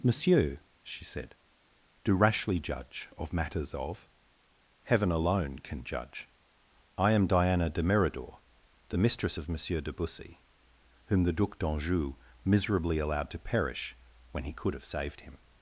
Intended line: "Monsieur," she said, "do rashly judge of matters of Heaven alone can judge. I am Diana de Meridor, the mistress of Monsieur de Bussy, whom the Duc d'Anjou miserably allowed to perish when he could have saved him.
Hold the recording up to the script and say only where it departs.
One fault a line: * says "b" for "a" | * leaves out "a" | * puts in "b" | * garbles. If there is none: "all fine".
all fine